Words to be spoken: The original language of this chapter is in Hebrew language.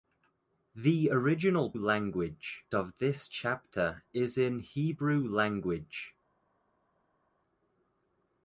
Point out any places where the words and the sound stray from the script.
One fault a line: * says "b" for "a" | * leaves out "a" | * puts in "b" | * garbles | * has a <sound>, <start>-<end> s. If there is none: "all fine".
all fine